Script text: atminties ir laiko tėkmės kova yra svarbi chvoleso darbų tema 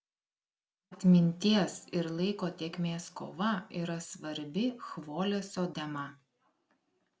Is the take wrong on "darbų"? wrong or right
wrong